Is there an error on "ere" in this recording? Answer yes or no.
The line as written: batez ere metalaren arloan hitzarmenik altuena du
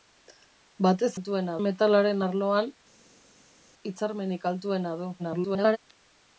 yes